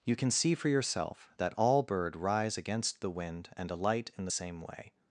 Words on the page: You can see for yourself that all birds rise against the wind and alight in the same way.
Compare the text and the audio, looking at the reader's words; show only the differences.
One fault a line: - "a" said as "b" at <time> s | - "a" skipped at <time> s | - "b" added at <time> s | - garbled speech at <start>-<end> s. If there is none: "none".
- "birds" said as "bird" at 1.8 s